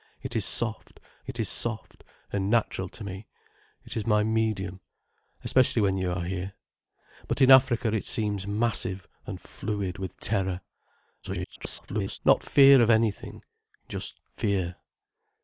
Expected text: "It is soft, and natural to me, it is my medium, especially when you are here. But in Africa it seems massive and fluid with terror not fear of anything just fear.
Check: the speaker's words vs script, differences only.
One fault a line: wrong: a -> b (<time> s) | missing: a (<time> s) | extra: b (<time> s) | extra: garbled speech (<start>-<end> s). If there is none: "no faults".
extra: it is soft (1.3 s)
extra: garbled speech (11.2-12.2 s)